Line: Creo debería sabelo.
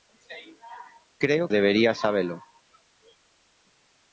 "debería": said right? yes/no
yes